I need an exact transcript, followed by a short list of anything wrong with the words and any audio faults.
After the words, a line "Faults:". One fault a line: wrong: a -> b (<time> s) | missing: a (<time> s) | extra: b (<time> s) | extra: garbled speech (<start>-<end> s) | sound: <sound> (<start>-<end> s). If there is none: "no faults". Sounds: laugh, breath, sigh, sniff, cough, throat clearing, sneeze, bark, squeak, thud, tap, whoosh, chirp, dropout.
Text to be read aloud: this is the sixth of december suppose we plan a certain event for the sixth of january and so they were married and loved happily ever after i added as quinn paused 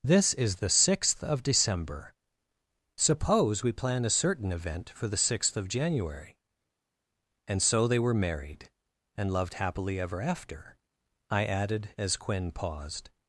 this is the sixth of december suppose we plan a certain event for the sixth of january and so they were married and loved happily ever after i added as quinn paused
Faults:
no faults